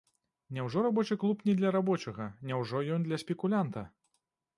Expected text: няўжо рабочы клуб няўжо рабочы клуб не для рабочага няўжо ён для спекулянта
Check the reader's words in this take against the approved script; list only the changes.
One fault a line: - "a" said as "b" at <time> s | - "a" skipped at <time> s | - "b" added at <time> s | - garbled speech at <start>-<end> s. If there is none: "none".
- "няўжо рабочы клуб" skipped at 1.4 s